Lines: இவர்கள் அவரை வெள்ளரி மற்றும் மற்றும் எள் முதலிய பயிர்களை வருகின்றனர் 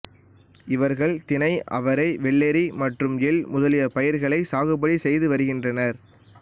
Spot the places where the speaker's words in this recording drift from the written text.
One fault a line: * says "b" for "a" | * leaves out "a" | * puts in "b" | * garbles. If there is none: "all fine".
* puts in "தினை"
* leaves out "மற்றும்"
* puts in "சாகுபடி செய்து"